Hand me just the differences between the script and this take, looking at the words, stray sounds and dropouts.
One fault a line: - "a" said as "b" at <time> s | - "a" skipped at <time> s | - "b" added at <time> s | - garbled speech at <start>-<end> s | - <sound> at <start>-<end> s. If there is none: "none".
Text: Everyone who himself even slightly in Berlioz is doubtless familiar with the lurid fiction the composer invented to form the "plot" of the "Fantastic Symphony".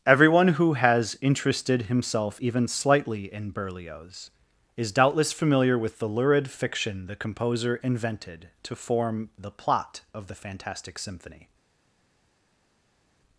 - "has interested" added at 0.7 s